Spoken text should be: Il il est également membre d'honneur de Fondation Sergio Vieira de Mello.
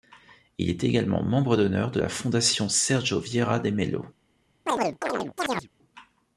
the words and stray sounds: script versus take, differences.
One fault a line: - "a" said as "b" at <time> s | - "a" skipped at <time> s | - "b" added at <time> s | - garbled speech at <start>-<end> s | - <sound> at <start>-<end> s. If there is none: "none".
- "il" skipped at 0.7 s
- "la" added at 2.0 s
- chirp at 4.7-5.7 s